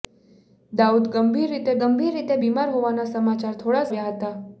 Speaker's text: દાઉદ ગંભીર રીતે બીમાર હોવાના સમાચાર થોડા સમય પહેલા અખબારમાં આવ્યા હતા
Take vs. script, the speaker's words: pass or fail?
fail